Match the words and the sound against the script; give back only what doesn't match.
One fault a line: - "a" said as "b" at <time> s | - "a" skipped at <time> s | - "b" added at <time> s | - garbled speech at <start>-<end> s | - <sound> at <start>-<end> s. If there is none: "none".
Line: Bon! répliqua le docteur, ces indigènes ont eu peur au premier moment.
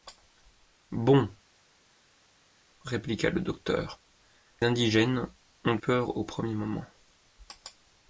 - "ces" skipped at 4.0 s
- "eu" skipped at 5.8 s